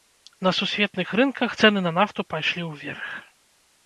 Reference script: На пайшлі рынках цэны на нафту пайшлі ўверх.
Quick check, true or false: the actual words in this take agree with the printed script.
false